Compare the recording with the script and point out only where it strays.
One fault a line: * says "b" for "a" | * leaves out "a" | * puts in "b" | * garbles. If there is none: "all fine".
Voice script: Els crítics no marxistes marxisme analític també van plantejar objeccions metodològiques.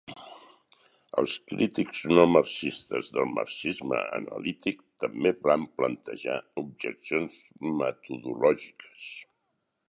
* puts in "del"